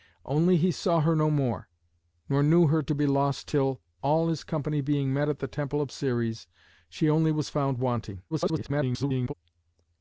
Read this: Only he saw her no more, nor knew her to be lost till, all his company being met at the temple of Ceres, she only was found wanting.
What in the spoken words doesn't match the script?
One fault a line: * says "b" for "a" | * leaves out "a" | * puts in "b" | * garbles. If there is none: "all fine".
* garbles